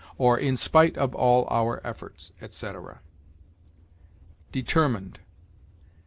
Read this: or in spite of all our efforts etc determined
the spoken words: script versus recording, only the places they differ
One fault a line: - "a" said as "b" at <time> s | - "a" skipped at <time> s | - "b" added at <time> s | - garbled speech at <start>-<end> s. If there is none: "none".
none